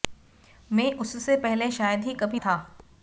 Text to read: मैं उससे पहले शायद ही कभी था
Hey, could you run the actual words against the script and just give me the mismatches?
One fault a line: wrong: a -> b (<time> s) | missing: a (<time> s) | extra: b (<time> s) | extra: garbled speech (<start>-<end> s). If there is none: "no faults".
no faults